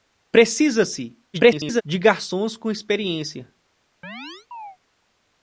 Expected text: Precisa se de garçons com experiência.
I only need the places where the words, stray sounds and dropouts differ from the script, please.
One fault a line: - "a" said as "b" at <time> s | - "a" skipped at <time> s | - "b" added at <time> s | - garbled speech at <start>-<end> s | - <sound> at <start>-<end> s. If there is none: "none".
- garbled speech at 1.3-1.8 s
- chirp at 4.0-4.8 s